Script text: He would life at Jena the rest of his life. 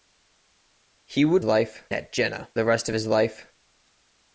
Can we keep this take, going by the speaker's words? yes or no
yes